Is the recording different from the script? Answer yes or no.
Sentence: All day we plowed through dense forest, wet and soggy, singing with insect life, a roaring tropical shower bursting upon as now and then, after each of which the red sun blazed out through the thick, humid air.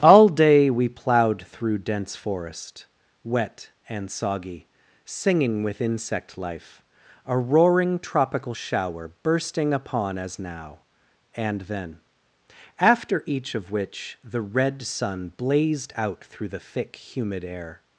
no